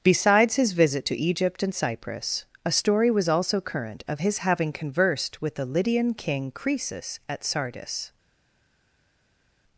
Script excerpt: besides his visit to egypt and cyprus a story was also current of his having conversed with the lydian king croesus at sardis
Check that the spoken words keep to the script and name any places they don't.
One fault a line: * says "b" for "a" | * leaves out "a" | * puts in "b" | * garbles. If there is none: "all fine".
all fine